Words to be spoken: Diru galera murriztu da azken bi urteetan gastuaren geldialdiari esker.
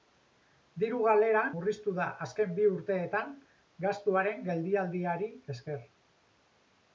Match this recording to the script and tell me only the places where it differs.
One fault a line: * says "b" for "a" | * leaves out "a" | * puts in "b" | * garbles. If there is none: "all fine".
all fine